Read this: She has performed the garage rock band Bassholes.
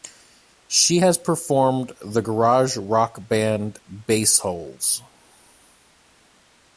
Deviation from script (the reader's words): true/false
false